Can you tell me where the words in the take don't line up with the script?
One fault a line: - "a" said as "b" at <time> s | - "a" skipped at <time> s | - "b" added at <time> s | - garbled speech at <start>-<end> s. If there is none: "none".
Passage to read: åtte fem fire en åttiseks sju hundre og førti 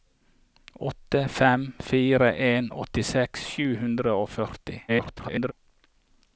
- garbled speech at 4.9-5.5 s